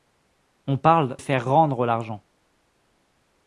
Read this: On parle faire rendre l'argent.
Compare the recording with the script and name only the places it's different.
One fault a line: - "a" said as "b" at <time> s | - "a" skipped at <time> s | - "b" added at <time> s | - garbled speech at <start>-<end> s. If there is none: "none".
none